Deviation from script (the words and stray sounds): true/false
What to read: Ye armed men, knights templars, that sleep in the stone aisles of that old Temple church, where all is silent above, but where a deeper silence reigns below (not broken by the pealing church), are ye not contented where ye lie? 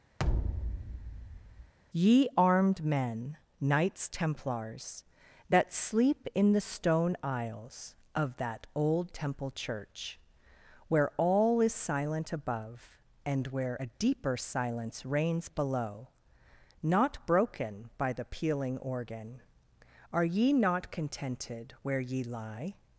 true